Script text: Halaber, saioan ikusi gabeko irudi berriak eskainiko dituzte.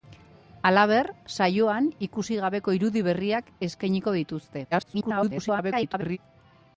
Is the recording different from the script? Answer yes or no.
yes